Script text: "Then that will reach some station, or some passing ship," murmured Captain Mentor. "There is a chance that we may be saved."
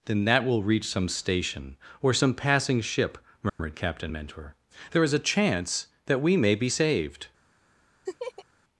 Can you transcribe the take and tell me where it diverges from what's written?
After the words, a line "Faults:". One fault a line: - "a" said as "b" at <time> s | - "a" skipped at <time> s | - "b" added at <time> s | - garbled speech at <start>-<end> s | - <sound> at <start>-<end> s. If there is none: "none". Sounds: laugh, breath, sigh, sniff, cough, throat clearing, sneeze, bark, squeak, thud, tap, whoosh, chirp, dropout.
"Then that will reach some station, or some passing ship," murmured Captain Mentor. "There is a chance that we may be saved."
Faults:
- dropout at 3.5-3.6 s
- laugh at 8.1-8.5 s